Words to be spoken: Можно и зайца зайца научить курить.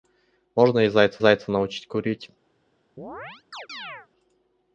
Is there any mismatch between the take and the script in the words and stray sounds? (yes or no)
yes